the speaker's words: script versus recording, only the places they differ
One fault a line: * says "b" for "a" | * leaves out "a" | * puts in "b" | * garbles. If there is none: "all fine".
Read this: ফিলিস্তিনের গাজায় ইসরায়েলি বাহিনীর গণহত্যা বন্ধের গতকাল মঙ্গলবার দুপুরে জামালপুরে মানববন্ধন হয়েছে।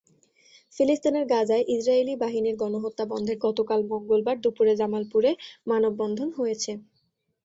all fine